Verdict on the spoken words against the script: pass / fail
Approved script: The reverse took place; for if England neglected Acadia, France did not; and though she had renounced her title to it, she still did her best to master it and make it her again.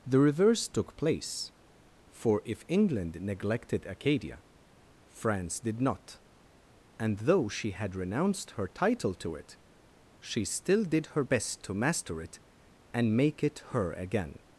pass